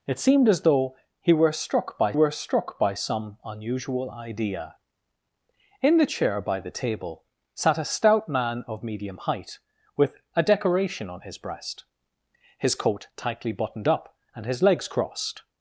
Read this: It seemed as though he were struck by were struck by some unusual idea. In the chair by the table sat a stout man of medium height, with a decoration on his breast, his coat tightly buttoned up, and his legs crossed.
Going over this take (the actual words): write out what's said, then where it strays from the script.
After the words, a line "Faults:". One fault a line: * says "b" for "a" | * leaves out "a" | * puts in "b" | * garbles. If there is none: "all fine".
It seemed as though he were struck by were struck by some unusual idea. In the chair by the table sat a stout man of medium height, with a decoration on his breast, his coat tightly buttoned up, and his legs crossed.
Faults:
all fine